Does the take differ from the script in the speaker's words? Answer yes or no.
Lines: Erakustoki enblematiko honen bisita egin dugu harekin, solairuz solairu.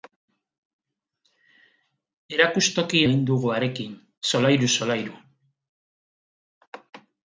yes